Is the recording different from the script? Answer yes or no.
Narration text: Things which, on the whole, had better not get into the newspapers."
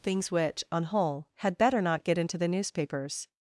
yes